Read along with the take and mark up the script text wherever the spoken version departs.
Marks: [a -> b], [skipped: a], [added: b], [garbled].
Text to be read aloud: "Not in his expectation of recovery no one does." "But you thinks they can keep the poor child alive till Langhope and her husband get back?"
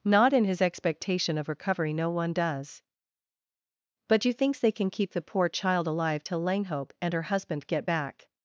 "Not in his expectation of recovery no one does." "But you thinks they can keep the poor child alive till Langhope and her husband get back?"